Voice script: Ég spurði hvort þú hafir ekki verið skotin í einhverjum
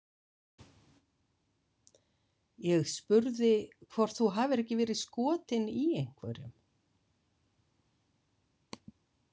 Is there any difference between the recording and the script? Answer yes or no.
no